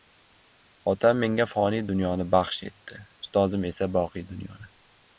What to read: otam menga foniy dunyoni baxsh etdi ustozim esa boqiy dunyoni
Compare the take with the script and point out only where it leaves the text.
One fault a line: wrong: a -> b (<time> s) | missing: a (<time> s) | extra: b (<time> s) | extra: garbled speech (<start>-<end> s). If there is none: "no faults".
no faults